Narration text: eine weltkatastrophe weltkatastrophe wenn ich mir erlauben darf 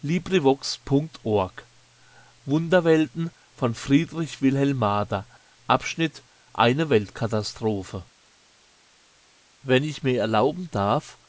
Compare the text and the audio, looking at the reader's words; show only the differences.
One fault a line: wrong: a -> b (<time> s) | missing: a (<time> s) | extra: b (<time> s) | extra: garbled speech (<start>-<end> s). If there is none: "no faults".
missing: weltkatastrophe (8.1 s)